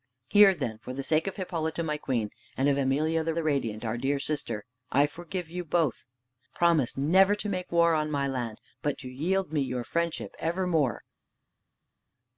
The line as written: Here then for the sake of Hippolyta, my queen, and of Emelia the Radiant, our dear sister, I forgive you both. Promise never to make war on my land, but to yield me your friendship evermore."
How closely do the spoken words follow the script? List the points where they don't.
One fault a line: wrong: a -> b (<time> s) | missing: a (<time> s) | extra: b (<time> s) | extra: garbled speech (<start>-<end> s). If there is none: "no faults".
extra: the (3.3 s)